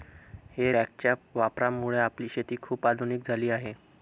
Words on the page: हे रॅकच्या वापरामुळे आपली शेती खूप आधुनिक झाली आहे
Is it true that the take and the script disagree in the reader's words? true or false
false